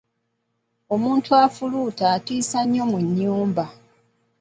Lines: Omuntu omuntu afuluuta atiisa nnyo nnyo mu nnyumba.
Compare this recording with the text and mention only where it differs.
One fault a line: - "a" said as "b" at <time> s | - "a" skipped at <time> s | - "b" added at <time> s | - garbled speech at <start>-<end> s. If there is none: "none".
- "omuntu" skipped at 1.3 s
- "nnyo" skipped at 2.8 s